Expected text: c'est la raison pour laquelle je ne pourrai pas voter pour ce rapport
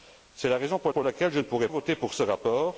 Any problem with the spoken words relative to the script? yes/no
yes